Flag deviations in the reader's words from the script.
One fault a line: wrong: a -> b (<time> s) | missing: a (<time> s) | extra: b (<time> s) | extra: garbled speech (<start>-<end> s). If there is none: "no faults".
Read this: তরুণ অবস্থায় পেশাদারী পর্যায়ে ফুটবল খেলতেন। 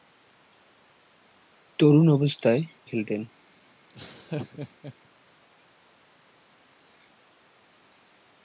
missing: পেশাদারী পর্যায়ে ফুটবল (2.6 s)